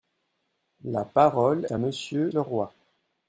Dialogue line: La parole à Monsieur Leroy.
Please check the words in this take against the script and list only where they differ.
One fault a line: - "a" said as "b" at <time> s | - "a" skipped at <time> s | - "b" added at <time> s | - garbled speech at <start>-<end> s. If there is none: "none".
none